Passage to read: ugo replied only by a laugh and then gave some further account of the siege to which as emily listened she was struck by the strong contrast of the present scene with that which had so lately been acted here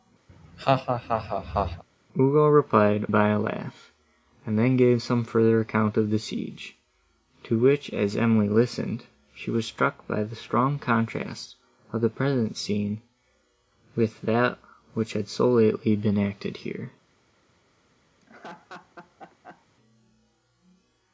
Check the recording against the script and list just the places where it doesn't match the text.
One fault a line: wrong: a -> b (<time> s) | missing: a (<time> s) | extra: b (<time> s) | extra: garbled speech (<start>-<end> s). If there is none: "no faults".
missing: only (3.1 s)